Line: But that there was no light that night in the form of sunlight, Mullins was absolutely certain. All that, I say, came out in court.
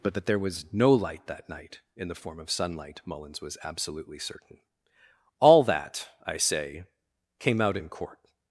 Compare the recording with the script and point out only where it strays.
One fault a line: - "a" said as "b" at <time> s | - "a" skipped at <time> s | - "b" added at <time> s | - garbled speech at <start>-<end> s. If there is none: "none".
none